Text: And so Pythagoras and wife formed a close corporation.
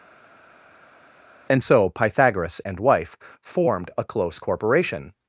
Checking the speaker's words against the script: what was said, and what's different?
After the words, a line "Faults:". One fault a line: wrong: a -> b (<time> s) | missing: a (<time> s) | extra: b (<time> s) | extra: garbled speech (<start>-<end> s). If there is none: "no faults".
And so Pythagoras and wife formed a close corporation.
Faults:
no faults